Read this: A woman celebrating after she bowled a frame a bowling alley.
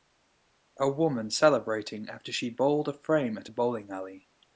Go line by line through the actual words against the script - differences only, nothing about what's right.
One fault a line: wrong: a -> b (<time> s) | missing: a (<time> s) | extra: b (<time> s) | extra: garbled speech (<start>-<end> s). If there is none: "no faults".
extra: at (3.4 s)